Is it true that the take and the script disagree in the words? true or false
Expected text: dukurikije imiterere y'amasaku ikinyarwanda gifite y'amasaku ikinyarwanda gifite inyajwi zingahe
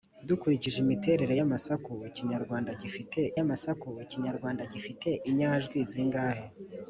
false